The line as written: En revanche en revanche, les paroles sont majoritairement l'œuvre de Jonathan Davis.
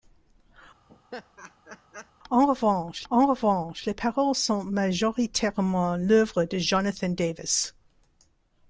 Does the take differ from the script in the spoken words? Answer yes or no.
no